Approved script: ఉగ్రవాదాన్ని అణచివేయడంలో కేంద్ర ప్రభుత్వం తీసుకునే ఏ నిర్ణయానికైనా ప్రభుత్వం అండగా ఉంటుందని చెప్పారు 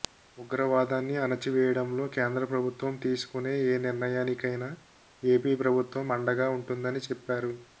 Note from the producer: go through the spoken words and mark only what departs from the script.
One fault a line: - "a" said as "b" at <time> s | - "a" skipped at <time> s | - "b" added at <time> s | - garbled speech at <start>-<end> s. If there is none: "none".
- "ఏపీ" added at 5.2 s